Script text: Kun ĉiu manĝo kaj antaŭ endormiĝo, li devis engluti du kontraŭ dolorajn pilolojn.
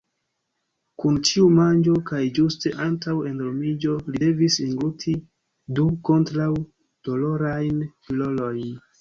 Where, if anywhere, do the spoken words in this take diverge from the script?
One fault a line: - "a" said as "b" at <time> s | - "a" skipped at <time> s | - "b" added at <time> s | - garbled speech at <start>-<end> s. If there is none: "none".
- "ĝuste" added at 2.4 s